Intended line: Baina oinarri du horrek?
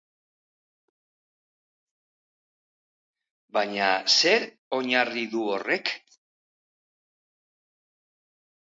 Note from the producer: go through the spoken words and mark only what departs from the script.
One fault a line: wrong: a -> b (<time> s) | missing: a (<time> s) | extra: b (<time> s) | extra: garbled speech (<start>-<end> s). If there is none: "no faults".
extra: zer (4.2 s)